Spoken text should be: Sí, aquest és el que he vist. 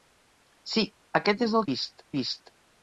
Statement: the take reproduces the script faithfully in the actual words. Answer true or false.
false